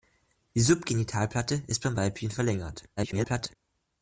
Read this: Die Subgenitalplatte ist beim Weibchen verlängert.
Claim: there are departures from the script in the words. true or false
true